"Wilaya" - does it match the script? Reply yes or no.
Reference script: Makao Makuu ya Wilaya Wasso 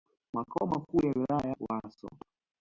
yes